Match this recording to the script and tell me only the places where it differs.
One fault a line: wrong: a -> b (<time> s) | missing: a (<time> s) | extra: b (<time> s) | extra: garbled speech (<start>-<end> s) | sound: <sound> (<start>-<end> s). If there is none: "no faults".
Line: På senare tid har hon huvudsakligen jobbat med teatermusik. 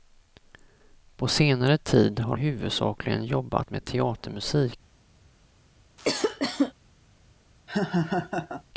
missing: hon (2.4 s)
sound: cough (6.0-6.7 s)
sound: laugh (7.7-8.6 s)